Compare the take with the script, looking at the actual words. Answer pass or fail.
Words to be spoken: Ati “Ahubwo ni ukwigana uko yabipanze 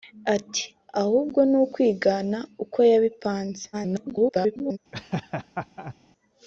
fail